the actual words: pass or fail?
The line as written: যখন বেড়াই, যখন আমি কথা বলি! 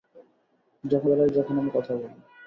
pass